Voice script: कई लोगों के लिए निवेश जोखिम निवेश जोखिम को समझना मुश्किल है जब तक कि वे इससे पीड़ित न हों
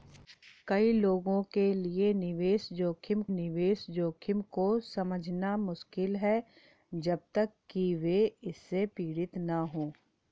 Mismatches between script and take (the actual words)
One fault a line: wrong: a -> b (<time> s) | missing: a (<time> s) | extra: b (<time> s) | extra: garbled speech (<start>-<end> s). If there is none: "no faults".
no faults